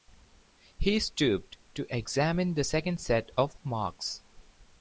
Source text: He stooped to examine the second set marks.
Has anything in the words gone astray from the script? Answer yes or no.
yes